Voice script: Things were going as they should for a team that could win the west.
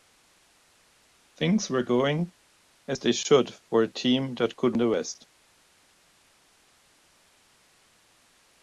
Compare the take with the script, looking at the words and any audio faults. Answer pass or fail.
fail